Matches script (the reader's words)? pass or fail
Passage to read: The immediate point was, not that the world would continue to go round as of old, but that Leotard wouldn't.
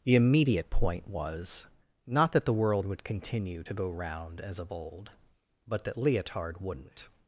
pass